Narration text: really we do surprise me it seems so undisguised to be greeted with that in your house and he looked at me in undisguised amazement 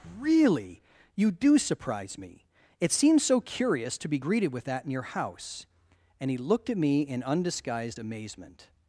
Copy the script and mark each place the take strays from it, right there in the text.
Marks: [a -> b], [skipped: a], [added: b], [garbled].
really [we -> you] do surprise me it seems so [undisguised -> curious] to be greeted with that in your house and he looked at me in undisguised amazement